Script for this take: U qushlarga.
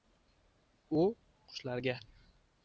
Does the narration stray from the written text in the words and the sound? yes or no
no